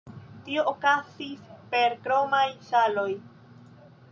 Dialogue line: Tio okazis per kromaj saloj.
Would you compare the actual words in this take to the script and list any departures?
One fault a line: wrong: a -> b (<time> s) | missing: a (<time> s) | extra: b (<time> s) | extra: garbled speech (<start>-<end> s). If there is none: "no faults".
no faults